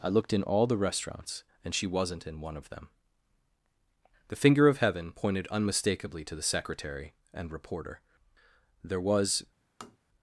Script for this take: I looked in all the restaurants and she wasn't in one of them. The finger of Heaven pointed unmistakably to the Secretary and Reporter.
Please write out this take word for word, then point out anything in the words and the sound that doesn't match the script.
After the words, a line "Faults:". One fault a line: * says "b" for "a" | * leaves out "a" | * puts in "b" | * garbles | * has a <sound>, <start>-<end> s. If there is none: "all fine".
I looked in all the restaurants and she wasn't in one of them. The finger of Heaven pointed unmistakably to the Secretary and Reporter. There was
Faults:
* puts in "There was"
* has a tap, 9.8-10.0 s